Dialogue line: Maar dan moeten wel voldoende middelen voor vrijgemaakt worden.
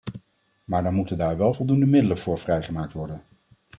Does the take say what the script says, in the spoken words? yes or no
no